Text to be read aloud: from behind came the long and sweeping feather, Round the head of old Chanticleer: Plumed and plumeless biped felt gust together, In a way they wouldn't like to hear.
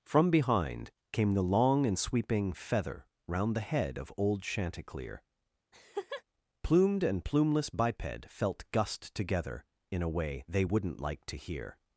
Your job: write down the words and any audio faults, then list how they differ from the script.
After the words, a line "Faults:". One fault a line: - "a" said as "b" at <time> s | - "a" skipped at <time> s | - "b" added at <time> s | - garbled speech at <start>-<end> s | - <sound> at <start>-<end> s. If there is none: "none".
from behind came the long and sweeping feather, Round the head of old Chanticleer: Plumed and plumeless biped felt gust together, In a way they wouldn't like to hear.
Faults:
- laugh at 5.7-6.2 s